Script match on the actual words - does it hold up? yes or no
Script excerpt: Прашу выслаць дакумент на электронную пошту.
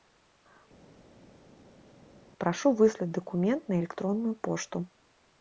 yes